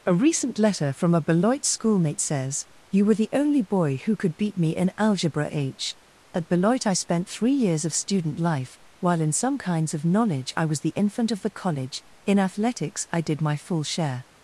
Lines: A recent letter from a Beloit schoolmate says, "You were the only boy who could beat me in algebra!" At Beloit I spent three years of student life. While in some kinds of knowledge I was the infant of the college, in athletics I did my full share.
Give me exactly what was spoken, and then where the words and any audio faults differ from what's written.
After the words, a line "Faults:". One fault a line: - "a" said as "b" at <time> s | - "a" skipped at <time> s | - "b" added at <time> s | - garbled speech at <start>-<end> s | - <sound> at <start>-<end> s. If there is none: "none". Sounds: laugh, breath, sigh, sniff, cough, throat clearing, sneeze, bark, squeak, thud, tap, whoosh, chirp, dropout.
A recent letter from a Beloit schoolmate says, "You were the only boy who could beat me in algebra!" h At Beloit I spent three years of student life. While in some kinds of knowledge I was the infant of the college, in athletics I did my full share.
Faults:
- "h" added at 5.5 s